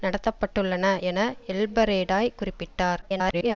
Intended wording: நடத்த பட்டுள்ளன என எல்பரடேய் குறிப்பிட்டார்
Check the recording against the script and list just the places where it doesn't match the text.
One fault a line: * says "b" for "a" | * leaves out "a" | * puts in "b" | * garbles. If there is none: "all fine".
* garbles